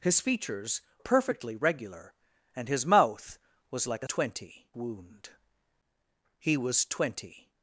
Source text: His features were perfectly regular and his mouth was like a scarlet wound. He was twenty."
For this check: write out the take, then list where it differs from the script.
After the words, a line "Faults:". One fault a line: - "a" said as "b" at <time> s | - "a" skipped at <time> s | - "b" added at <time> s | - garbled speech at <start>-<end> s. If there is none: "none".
His features perfectly regular and his mouth was like a twenty wound. He was twenty."
Faults:
- "were" skipped at 0.8 s
- "scarlet" said as "twenty" at 4.0 s